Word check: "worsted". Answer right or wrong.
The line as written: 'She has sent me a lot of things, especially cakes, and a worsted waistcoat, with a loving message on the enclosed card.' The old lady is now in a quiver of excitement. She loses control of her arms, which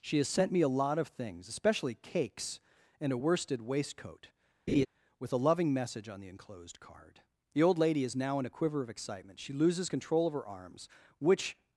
right